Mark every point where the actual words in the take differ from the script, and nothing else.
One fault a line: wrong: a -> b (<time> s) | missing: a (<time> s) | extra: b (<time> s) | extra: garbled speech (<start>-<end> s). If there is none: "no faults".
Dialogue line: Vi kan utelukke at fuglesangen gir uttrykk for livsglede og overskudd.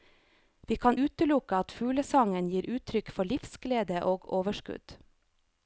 no faults